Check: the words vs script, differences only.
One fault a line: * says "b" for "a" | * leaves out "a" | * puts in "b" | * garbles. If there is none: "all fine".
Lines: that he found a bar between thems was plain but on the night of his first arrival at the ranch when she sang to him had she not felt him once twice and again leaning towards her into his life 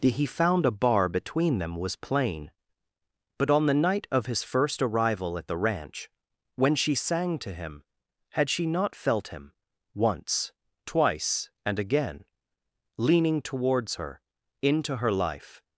* says "them" for "thems"
* says "her" for "his"